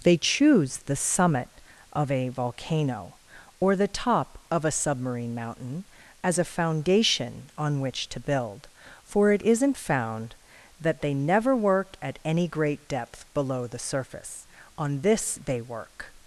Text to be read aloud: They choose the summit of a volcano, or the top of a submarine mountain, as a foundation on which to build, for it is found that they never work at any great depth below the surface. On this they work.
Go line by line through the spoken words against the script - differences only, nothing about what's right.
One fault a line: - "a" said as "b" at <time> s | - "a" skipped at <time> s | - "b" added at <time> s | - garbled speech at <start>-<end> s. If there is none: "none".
- "is" said as "isn't" at 9.4 s